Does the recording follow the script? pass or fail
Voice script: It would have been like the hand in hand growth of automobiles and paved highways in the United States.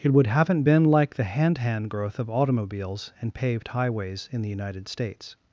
fail